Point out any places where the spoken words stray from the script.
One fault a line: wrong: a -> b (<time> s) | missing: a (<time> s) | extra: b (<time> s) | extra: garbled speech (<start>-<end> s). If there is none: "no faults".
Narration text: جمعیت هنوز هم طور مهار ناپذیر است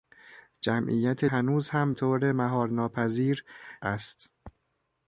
no faults